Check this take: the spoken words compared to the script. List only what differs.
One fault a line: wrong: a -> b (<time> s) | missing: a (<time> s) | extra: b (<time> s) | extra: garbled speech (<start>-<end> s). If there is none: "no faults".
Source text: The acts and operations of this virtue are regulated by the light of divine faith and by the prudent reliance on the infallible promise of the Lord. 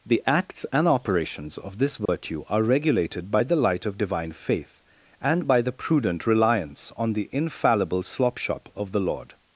wrong: promise -> slopshop (8.0 s)